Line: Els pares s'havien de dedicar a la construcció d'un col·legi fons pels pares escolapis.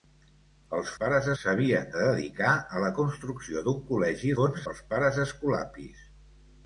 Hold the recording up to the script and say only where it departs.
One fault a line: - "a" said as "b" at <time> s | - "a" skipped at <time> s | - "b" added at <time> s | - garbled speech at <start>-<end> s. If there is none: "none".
none